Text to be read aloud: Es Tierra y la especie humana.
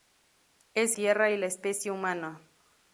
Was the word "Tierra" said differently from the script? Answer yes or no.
no